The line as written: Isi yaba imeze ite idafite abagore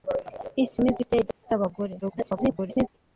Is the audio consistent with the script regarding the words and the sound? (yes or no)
no